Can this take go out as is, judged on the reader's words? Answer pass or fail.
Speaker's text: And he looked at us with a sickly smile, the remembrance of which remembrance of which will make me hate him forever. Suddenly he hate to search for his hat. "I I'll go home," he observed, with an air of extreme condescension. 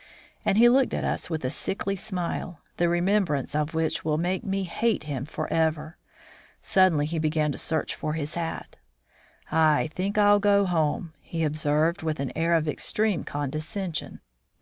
fail